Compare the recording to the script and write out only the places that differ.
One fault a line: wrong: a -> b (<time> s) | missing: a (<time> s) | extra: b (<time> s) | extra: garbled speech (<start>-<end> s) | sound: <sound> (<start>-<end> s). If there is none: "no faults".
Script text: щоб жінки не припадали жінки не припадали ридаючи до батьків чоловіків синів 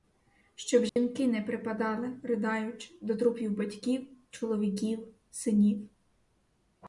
sound: dropout (0.9-1.0 s)
missing: жінки не припадали (2.2 s)
extra: трупів (3.1 s)